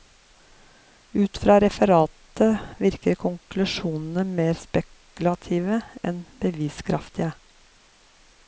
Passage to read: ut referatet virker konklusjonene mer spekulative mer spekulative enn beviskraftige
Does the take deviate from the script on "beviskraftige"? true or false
false